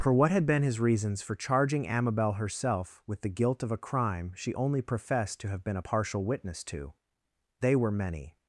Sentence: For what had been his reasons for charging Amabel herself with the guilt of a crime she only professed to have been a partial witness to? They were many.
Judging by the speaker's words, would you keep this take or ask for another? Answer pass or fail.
pass